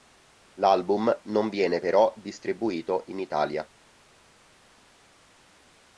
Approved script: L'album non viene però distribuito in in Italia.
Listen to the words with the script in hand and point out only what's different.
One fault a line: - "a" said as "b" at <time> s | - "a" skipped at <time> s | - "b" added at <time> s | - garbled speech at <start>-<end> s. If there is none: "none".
- "in" skipped at 3.2 s